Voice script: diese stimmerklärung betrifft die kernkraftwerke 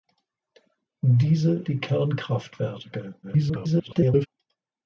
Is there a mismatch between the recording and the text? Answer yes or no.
yes